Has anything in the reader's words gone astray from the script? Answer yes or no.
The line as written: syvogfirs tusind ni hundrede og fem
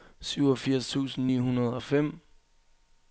no